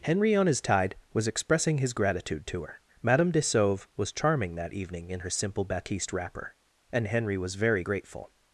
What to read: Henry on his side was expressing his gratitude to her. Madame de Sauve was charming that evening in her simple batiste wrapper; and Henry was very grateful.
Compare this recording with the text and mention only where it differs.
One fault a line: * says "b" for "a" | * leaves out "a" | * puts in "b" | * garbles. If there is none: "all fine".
* says "tide" for "side"